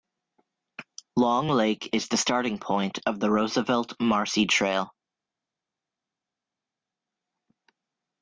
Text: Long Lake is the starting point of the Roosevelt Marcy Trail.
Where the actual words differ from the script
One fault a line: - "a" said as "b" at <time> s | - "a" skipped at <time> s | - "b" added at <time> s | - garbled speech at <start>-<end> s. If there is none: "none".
none